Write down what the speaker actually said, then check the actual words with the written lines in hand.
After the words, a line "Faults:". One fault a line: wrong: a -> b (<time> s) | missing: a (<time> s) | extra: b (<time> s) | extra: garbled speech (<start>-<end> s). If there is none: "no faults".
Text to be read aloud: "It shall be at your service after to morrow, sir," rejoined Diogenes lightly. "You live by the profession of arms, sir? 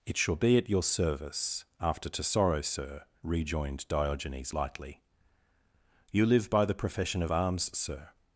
"It shall be at your service after to sorrow, sir," rejoined Diogenes lightly. "You live by the profession of arms, sir?
Faults:
wrong: morrow -> sorrow (2.2 s)